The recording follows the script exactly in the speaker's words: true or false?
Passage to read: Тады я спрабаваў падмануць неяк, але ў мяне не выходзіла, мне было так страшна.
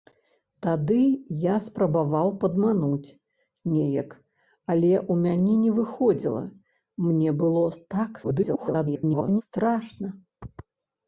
false